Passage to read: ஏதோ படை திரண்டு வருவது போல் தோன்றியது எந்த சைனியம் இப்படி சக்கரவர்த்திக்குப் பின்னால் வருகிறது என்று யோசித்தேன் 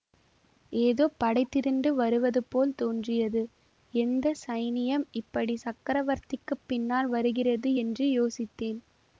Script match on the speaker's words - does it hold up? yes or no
yes